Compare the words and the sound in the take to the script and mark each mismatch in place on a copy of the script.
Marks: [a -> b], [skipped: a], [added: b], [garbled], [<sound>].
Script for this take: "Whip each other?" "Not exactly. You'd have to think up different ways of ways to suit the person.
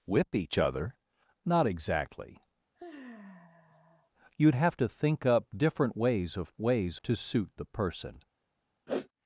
"Whip each other?" "Not exactly. [sigh] You'd have to think up different ways of ways to suit the person. [sniff]